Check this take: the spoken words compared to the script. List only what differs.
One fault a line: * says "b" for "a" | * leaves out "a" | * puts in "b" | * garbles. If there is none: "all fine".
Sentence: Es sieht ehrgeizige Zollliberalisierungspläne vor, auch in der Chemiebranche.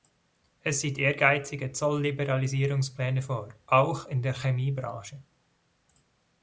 all fine